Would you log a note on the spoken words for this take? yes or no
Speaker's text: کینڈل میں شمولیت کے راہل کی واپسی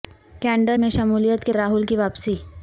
no